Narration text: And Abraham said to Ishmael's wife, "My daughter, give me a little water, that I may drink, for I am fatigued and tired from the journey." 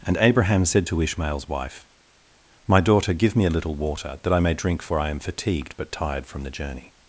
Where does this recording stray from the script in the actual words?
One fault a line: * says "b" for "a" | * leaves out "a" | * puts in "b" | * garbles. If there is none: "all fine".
* says "but" for "and"